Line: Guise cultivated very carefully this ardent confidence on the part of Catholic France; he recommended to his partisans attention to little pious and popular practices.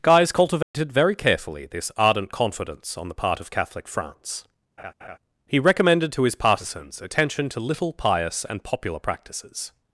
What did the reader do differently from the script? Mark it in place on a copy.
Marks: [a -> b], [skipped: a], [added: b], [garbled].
Guise cultivated very carefully this ardent confidence on the part of Catholic France; he recommended to his partisans attention to little pious and popular practices.